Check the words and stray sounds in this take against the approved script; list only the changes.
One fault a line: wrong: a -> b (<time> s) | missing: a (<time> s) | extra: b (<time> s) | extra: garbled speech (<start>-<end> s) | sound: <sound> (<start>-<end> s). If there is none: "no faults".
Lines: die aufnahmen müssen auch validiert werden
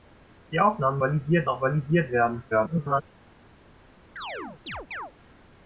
wrong: müssen -> validiert (1.0 s)
extra: garbled speech (2.5-3.0 s)
sound: chirp (4.2-5.1 s)